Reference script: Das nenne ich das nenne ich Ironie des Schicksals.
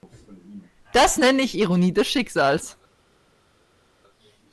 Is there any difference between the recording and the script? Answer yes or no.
yes